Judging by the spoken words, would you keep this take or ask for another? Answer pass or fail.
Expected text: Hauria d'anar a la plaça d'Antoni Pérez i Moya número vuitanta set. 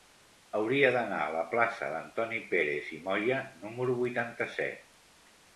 pass